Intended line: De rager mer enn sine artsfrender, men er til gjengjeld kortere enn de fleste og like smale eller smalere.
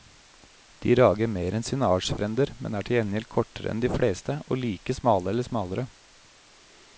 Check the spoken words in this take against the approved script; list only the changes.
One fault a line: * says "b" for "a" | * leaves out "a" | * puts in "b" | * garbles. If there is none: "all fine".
all fine